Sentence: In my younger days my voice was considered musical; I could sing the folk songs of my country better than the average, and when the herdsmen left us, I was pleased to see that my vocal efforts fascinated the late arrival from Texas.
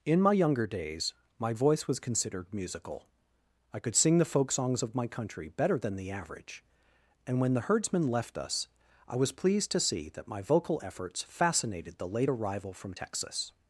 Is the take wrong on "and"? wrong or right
right